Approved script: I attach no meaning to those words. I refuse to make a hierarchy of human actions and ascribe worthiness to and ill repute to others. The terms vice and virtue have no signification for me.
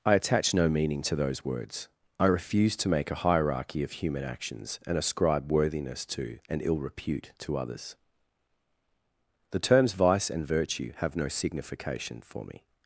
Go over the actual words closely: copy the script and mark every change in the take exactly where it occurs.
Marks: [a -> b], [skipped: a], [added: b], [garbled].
I attach no meaning to those words. I refuse to make a hierarchy of human actions and ascribe worthiness to and ill repute to others. The terms vice and virtue have no signification for me.